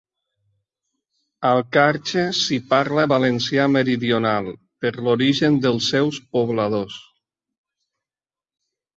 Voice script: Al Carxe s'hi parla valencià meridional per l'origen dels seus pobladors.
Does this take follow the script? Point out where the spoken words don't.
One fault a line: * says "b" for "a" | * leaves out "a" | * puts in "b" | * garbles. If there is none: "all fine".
all fine